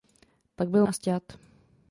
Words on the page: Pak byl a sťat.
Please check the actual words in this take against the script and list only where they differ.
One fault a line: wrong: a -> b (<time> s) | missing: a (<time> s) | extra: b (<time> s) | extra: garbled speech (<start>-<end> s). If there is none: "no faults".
no faults